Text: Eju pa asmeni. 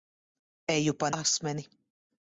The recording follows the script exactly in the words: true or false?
true